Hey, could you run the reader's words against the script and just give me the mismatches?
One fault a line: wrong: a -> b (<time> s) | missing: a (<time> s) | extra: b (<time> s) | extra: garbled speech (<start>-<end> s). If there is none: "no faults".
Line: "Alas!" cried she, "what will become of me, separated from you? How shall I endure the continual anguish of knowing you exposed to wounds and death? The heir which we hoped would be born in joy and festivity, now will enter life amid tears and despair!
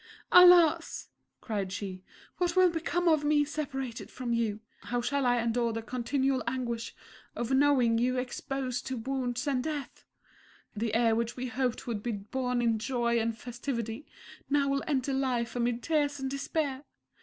no faults